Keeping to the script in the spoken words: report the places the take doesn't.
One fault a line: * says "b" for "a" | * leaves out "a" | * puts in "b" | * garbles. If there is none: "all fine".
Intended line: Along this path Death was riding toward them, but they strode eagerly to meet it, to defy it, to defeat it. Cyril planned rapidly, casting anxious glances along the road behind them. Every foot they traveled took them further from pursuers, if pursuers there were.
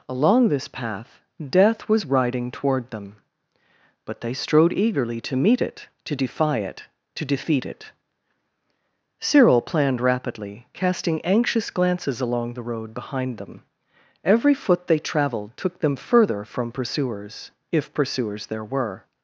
all fine